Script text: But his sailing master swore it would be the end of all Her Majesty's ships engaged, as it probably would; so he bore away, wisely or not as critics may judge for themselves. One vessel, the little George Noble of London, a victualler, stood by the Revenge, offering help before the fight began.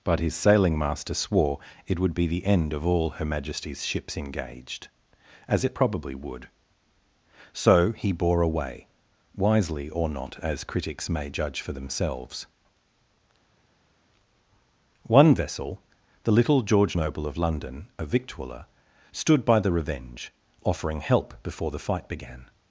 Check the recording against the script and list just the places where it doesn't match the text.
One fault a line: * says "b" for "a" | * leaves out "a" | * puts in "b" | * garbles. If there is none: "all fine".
all fine